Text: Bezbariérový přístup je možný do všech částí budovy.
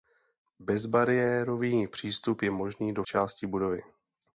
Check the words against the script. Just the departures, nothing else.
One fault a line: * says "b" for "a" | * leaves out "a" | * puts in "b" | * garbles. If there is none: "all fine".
* leaves out "všech"